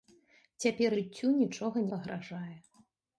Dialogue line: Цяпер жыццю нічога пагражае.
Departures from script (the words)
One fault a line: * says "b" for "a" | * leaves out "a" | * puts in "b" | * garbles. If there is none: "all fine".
all fine